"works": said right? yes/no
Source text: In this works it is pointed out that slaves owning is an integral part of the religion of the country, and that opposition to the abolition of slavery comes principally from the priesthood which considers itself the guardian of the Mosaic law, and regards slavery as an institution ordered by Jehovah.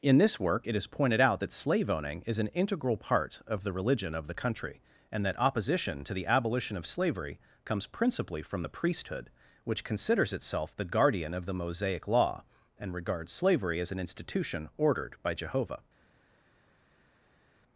no